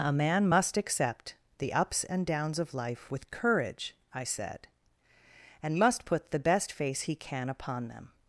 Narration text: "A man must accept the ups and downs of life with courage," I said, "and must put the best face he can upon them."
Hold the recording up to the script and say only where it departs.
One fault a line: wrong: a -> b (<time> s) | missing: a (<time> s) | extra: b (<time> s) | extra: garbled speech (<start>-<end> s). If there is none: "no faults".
no faults